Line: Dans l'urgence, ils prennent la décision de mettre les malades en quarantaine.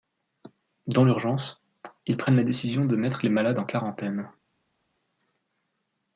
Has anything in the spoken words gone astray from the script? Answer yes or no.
no